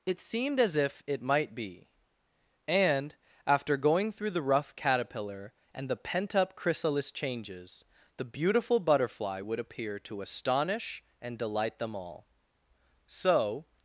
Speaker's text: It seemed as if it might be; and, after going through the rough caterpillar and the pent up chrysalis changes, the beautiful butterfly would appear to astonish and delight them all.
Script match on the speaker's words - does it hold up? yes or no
no